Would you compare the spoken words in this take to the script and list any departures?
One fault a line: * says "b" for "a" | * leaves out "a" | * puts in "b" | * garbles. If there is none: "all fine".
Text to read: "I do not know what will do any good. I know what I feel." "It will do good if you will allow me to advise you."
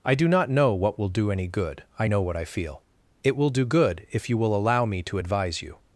all fine